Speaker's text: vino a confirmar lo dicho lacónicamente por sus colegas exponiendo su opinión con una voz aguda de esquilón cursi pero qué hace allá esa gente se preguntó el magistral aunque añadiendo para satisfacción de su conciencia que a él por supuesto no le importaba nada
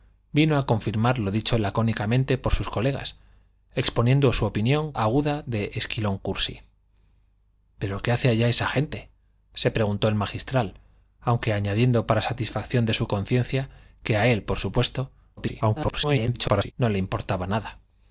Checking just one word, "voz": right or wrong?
wrong